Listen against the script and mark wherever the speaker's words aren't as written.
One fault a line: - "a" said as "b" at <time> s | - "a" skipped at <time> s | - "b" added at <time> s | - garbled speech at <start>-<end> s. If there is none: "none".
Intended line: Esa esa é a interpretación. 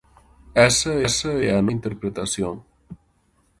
none